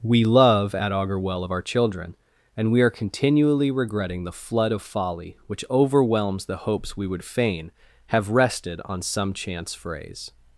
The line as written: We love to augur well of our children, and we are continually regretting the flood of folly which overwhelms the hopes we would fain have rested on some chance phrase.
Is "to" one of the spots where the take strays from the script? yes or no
yes